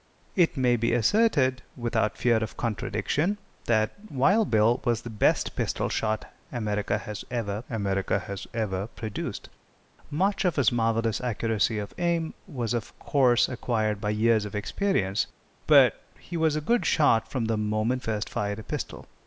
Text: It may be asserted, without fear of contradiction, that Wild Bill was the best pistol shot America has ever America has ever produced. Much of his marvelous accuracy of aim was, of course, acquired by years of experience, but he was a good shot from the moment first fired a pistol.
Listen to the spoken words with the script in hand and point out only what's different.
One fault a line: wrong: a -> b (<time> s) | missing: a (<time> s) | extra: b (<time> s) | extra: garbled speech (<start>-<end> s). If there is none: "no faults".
no faults